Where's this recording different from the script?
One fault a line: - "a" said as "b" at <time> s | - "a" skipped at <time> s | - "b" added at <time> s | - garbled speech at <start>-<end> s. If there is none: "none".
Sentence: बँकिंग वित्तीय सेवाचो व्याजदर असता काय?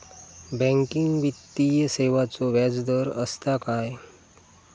none